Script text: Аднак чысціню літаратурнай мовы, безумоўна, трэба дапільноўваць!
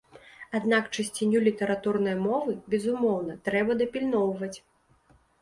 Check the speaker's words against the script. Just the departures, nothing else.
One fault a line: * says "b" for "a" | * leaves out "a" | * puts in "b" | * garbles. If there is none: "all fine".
all fine